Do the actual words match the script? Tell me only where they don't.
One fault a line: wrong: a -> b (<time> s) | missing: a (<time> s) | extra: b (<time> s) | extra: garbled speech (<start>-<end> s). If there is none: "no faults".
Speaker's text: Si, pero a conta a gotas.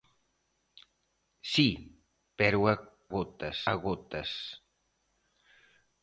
wrong: conta -> gotas (3.1 s)